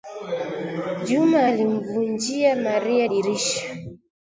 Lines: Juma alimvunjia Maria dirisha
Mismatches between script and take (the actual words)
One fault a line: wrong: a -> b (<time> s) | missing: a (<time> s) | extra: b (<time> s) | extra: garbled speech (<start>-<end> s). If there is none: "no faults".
no faults